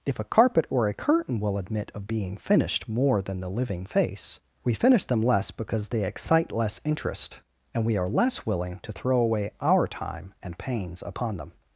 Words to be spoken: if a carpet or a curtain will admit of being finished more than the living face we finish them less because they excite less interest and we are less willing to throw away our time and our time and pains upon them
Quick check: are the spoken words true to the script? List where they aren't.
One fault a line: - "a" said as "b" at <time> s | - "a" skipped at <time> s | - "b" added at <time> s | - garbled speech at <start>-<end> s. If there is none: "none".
- "our time and" skipped at 10.6 s